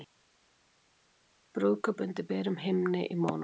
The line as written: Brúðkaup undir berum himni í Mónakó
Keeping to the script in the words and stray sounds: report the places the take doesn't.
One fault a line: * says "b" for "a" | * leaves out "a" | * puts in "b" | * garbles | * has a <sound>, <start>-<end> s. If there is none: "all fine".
all fine